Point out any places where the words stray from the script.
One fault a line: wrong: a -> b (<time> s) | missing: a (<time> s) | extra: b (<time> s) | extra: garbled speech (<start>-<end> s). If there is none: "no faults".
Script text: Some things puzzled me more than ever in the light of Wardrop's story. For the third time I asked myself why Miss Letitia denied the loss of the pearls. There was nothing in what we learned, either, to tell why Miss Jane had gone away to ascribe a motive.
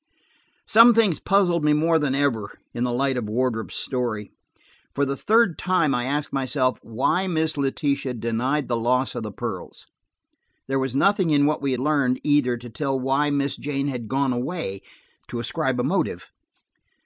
no faults